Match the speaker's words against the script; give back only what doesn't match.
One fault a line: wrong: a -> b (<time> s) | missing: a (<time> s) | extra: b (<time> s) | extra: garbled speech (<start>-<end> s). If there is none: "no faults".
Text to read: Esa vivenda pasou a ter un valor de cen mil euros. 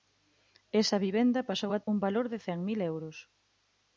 missing: ter (1.8 s)